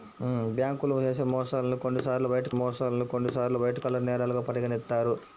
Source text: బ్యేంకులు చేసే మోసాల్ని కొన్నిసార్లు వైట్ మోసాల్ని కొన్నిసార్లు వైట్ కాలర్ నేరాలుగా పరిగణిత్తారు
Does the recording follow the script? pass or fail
pass